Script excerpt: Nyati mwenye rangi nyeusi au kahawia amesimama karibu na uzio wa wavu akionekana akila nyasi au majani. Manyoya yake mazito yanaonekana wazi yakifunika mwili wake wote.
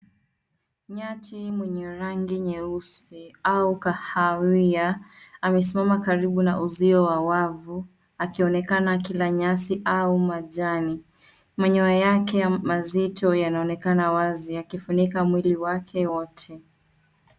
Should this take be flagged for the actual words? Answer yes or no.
no